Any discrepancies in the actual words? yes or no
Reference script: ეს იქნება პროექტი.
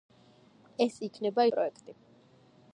no